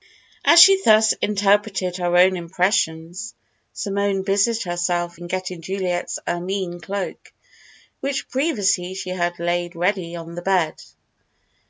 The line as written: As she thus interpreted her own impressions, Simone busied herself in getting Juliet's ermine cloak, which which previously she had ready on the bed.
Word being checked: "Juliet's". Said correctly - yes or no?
yes